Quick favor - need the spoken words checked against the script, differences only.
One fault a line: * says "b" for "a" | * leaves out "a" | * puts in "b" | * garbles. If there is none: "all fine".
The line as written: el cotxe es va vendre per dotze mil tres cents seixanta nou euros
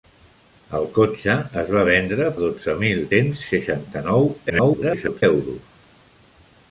* leaves out "per"
* leaves out "tres"
* garbles